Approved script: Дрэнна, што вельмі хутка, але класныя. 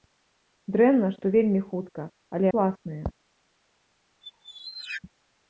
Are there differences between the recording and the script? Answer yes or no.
no